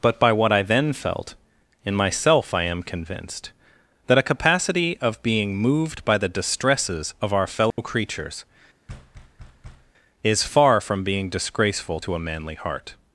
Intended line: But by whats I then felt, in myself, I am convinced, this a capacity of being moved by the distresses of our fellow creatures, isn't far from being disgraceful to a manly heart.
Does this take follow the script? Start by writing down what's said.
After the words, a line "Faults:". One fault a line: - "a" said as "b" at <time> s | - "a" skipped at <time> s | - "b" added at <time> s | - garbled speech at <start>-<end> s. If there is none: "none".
But by what I then felt, in myself, I am convinced, that a capacity of being moved by the distresses of our fellow creatures, is far from being disgraceful to a manly heart.
Faults:
- "whats" said as "what" at 0.3 s
- "this" said as "that" at 4.1 s
- "isn't" said as "is" at 10.2 s